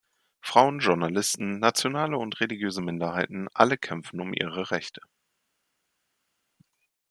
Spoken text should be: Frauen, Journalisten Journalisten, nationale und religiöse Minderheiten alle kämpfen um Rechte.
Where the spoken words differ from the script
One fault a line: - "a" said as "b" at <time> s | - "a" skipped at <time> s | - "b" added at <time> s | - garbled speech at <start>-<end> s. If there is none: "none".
- "Journalisten" skipped at 1.6 s
- "ihre" added at 4.3 s